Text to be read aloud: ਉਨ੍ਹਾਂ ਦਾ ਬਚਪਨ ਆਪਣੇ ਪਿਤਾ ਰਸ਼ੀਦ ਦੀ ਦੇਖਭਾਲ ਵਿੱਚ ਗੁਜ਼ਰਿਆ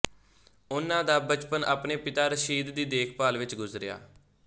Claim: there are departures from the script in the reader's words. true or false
false